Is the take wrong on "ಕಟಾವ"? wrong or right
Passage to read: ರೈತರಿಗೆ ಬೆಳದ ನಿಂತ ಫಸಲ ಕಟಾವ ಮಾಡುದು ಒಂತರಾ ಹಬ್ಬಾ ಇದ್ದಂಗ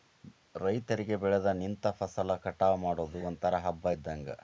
right